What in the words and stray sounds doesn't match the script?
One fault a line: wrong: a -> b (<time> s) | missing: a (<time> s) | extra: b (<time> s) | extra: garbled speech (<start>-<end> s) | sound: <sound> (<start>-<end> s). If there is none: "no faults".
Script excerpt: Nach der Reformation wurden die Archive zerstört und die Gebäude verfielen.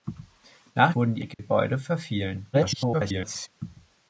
missing: der Reformation (0.9 s)
missing: Archive zerstört und (1.2 s)
sound: dropout (1.3-1.4 s)
extra: garbled speech (2.5-3.5 s)